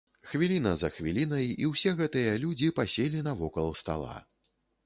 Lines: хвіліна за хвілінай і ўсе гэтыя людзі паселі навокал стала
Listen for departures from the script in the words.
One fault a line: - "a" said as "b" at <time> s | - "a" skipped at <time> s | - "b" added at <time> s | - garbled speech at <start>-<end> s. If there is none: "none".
none